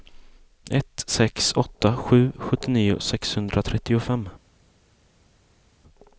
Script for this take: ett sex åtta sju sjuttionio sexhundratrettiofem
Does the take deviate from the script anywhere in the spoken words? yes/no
no